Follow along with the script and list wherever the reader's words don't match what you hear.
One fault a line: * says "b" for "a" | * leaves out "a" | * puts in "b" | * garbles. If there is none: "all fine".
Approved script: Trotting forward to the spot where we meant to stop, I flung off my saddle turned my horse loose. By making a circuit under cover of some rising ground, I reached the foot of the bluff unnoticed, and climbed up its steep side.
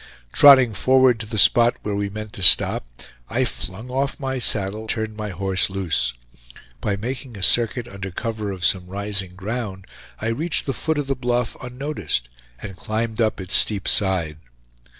all fine